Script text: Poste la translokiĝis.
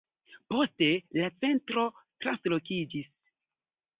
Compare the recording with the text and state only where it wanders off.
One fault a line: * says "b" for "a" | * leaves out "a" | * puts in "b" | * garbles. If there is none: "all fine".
* puts in "centro"